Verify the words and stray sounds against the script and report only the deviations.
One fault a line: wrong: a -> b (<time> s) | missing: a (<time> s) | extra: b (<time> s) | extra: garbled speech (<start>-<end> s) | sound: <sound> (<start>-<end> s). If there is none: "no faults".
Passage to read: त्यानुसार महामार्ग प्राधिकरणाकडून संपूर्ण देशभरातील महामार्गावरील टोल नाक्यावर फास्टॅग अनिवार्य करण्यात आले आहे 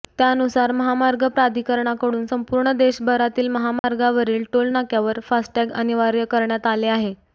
sound: dropout (3.8-3.8 s)